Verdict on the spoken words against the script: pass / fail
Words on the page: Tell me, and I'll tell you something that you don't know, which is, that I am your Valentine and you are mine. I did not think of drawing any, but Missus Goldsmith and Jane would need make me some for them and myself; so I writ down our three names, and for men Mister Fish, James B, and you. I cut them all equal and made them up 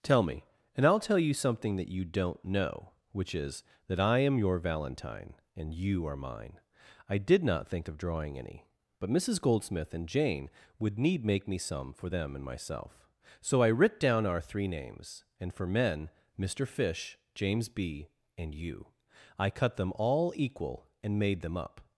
pass